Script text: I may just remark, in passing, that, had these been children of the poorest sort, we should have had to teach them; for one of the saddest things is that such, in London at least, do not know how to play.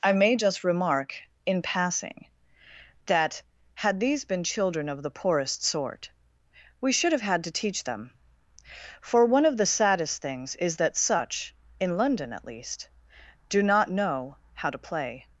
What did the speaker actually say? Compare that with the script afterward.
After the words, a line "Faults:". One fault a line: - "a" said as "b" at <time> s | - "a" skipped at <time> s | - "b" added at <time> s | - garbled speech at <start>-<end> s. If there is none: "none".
I may just remark, in passing, that, had these been children of the poorest sort, we should have had to teach them; for one of the saddest things is that such, in London at least, do not know how to play.
Faults:
none